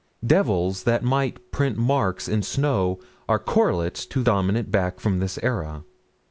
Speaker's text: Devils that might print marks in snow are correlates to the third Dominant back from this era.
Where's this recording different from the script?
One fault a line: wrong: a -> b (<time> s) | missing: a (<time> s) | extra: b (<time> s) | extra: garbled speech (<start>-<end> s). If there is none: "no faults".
missing: the third (4.2 s)